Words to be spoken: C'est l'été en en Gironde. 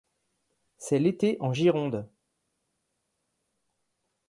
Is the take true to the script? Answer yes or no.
no